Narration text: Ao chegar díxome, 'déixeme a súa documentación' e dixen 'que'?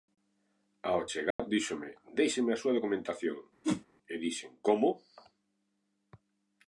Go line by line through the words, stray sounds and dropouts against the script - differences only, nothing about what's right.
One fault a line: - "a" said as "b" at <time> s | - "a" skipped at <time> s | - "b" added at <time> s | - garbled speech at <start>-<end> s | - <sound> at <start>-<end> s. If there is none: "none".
- dropout at 1.3-1.4 s
- whoosh at 3.6-3.9 s
- "que" said as "como" at 4.6 s